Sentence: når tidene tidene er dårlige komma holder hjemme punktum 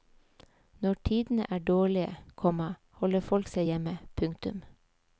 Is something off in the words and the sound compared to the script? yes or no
yes